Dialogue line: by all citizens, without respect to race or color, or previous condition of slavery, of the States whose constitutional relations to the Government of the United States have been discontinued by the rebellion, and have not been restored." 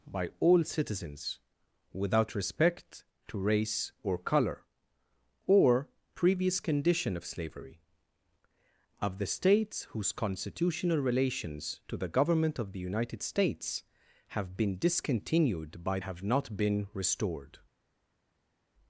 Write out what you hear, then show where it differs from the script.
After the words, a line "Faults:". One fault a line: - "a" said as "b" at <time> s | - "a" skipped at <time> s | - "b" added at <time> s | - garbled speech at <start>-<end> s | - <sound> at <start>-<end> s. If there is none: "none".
by all citizens, without respect to race or color, or previous condition of slavery, of the States whose constitutional relations to the Government of the United States have been discontinued by have not been restored."
Faults:
- "the rebellion and" skipped at 16.0 s